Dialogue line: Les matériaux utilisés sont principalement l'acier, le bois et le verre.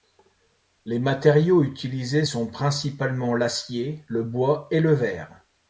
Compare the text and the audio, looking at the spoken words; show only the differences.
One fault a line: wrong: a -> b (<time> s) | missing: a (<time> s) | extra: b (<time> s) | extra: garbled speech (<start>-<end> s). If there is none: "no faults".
no faults